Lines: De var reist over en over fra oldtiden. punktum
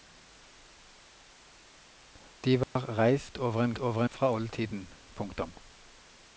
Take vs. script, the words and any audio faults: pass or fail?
fail